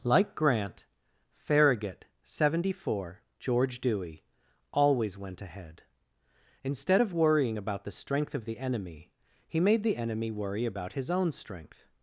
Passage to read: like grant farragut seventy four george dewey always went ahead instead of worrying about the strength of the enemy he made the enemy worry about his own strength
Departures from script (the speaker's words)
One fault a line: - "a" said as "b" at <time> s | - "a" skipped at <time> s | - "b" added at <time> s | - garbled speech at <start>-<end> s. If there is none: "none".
none